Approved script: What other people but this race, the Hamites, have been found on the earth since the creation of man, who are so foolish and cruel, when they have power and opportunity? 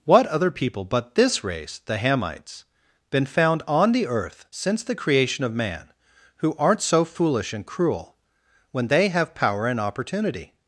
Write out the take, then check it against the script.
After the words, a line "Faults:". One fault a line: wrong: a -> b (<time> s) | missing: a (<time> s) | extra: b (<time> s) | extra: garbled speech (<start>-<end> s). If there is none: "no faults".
What other people but this race, the Hamites, been found on the earth since the creation of man, who aren't so foolish and cruel, when they have power and opportunity?
Faults:
missing: have (2.6 s)
wrong: are -> aren't (6.6 s)